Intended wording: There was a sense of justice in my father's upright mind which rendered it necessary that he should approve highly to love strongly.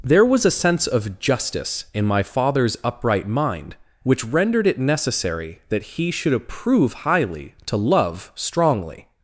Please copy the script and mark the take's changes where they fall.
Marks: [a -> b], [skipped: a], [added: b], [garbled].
There was a sense of justice in my father's upright mind which rendered it necessary that he should approve highly to love strongly.